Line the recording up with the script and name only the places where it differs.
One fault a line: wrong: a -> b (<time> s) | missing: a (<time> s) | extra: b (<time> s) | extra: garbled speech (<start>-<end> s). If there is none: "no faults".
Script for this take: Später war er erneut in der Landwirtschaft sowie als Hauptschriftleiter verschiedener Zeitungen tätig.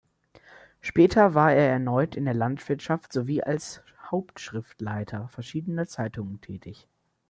no faults